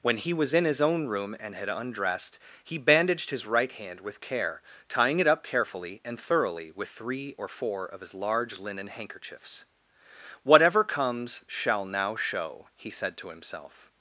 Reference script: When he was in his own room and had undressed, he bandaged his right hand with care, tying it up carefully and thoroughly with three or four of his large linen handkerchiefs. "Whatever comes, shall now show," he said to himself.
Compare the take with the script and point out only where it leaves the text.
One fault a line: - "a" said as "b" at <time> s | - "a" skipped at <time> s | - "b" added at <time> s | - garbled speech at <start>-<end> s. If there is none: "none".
none